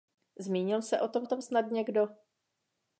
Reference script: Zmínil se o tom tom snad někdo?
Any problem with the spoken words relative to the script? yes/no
no